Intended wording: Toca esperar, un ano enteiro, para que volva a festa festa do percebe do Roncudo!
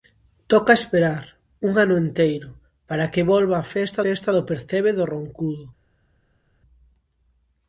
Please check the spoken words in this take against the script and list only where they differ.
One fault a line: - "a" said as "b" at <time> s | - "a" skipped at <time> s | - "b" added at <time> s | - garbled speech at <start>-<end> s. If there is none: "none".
none